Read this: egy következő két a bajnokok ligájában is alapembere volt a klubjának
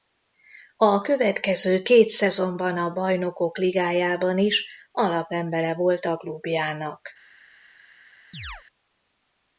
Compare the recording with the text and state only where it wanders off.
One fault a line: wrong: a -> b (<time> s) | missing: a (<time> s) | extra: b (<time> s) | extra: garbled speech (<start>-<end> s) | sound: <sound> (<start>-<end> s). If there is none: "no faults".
wrong: egy -> a (0.8 s)
extra: szezonban (2.1 s)
sound: chirp (8.3-8.6 s)